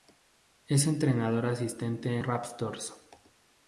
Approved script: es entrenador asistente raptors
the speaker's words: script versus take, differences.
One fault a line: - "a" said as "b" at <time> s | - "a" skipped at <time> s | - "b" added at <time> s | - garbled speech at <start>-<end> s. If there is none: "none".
none